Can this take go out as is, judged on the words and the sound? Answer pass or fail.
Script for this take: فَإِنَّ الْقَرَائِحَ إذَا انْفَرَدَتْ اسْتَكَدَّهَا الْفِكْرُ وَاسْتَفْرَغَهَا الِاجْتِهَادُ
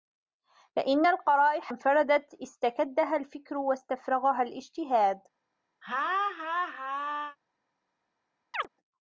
fail